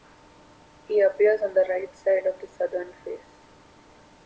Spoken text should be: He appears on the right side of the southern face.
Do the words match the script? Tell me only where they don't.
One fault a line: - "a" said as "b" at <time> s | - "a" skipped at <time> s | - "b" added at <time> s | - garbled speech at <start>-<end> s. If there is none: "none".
none